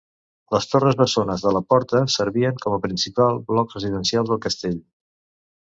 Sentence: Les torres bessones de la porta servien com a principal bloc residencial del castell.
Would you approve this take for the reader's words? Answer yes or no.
yes